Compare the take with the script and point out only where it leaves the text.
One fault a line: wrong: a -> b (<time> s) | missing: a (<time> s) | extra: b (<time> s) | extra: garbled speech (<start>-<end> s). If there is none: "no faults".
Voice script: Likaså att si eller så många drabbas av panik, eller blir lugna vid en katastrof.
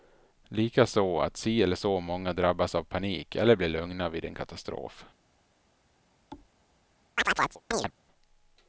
no faults